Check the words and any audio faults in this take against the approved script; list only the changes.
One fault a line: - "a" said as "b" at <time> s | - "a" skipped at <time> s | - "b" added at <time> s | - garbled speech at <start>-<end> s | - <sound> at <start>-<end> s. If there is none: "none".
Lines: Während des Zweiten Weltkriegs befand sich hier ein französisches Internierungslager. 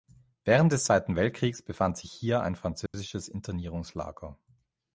- dropout at 2.9-2.9 s